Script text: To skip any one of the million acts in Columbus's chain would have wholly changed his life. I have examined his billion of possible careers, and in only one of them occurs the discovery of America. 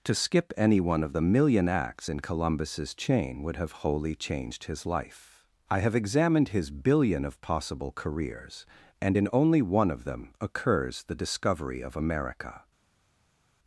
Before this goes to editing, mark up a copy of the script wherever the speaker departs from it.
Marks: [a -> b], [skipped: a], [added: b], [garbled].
To skip any one of the million acts in Columbus's chain would have wholly changed his life. I have examined his billion of possible careers, and in only one of them occurs the discovery of America.